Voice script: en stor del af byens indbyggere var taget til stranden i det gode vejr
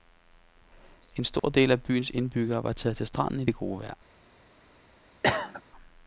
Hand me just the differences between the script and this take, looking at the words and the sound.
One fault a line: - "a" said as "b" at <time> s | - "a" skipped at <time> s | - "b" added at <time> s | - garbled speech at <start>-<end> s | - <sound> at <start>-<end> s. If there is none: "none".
- dropout at 1.4-1.4 s
- cough at 5.2-5.6 s